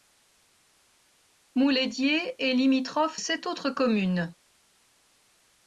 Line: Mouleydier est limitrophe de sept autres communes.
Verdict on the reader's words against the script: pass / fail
fail